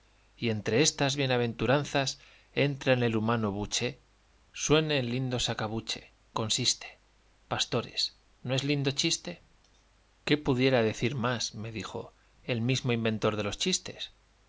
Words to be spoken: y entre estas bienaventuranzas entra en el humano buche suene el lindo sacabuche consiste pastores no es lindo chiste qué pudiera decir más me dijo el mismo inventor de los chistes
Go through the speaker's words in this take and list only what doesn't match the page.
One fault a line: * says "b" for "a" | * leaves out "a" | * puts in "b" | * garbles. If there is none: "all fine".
all fine